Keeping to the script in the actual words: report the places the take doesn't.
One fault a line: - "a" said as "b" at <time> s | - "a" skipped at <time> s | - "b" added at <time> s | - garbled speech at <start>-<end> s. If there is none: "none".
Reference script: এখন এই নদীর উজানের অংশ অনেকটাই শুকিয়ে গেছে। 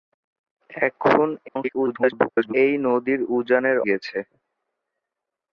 - garbled speech at 1.5-2.5 s
- "অংশ অনেকটাই শুকিয়ে" skipped at 3.8 s